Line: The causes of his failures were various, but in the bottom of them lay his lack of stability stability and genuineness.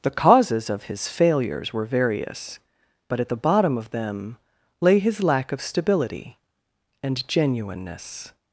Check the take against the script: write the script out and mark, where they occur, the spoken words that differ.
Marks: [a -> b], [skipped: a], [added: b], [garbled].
The causes of his failures were various, but [in -> at] the bottom of them lay his lack of stability [skipped: stability] and genuineness.